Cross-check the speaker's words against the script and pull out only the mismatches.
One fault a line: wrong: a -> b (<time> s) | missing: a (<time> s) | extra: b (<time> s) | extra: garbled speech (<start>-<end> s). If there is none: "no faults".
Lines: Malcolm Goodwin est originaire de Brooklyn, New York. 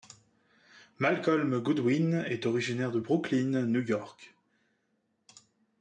no faults